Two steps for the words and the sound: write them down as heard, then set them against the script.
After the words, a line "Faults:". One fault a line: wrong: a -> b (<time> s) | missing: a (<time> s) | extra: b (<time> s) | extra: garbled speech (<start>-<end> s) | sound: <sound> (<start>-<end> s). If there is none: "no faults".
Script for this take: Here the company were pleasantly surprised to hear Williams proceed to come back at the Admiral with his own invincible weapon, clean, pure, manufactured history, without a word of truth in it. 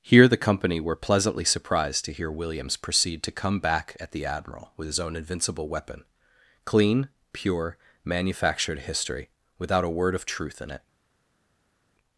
Here the company were pleasantly surprised to hear Williams proceed to come back at the Admiral with his own invincible weapon, clean, pure, manufactured history, without a word of truth in it.
Faults:
no faults